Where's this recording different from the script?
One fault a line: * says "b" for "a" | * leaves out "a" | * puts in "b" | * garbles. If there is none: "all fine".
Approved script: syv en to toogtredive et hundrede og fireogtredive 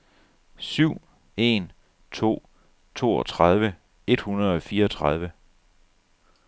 all fine